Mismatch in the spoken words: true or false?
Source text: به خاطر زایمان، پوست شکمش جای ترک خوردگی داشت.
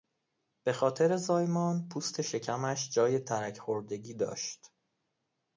false